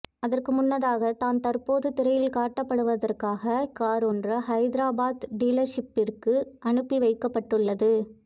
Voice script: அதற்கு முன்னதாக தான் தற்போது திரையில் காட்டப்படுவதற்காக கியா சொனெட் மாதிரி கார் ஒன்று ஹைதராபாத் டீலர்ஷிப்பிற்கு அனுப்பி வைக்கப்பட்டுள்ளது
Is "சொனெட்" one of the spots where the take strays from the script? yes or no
yes